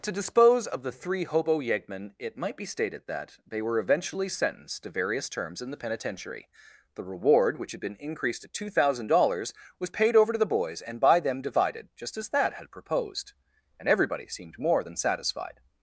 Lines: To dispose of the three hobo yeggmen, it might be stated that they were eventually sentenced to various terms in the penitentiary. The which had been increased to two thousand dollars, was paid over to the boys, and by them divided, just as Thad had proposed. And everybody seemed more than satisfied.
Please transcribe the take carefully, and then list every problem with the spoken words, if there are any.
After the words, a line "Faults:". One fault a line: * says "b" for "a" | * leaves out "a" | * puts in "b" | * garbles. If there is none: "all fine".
To dispose of the three hobo yeggmen, it might be stated that they were eventually sentenced to various terms in the penitentiary. The reward, which had been increased to two thousand dollars, was paid over to the boys, and by them divided, just as Thad had proposed. And everybody seemed more than satisfied.
Faults:
* puts in "reward"